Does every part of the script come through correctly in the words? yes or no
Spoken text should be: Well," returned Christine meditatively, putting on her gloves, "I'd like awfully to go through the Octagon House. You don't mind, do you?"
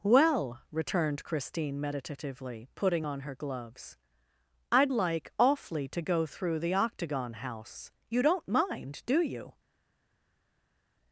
yes